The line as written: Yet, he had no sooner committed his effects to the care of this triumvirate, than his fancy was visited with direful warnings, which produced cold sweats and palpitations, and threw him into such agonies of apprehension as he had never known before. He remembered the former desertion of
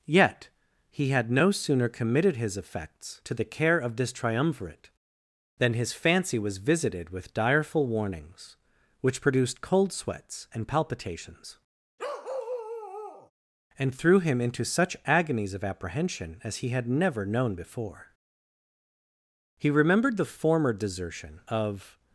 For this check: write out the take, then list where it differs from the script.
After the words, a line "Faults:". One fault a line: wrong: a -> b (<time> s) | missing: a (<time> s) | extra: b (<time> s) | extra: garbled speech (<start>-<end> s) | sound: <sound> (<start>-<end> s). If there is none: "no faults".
Yet, he had no sooner committed his effects to the care of this triumvirate, than his fancy was visited with direful warnings, which produced cold sweats and palpitations, and threw him into such agonies of apprehension as he had never known before. He remembered the former desertion of
Faults:
sound: bark (12.0-13.3 s)